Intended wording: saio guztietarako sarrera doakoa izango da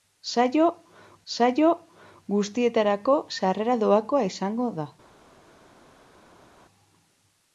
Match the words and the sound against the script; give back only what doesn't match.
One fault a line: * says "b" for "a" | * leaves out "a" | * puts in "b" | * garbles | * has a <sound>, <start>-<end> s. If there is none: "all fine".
* puts in "saio"